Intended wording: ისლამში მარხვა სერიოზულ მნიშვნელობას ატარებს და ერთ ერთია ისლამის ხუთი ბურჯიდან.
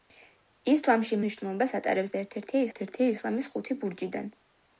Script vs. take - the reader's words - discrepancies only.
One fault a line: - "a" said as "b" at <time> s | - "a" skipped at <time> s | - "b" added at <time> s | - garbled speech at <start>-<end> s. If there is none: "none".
- "მარხვა სერიოზულ" skipped at 1.2 s
- "ერთ ერთია" added at 2.7 s